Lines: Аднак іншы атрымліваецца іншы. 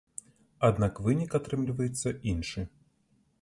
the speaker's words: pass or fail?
fail